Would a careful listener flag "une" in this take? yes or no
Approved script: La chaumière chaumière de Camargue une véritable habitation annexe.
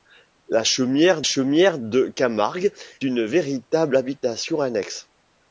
no